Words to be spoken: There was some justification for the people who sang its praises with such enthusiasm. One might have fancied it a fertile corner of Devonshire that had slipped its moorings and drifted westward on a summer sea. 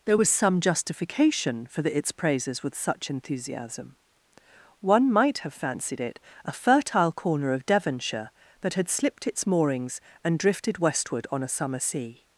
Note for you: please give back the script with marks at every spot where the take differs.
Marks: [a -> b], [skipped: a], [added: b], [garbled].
There was some justification for the [skipped: people who sang] its praises with such enthusiasm. One might have fancied it a fertile corner of Devonshire that had slipped its moorings and drifted westward on a summer sea.